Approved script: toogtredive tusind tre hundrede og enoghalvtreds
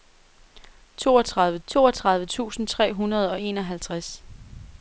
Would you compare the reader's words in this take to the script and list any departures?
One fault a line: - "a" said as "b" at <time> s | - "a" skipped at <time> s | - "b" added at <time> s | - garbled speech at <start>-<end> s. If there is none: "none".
- "toogtredive" added at 1.7 s